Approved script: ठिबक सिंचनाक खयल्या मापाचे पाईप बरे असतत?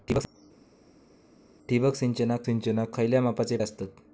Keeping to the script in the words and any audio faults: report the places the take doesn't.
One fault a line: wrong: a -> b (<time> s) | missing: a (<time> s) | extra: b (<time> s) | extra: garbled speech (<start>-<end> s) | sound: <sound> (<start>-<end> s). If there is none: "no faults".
extra: सिंचनाक (2.4 s)
missing: पाईप बरे (3.6 s)